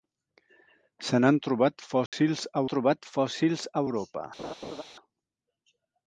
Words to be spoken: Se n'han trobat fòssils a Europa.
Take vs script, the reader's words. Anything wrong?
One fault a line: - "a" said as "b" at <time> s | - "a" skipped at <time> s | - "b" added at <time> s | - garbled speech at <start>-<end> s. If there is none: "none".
- "trobat fòssils a" added at 2.7 s